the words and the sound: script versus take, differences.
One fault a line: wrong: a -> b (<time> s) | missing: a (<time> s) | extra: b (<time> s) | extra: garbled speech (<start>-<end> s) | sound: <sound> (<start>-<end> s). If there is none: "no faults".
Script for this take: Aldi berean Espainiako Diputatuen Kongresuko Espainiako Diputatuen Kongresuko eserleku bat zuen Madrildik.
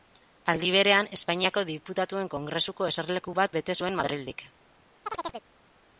missing: Espainiako Diputatuen Kongresuko (2.9 s)
extra: bete (3.6 s)
sound: chirp (5.0-5.5 s)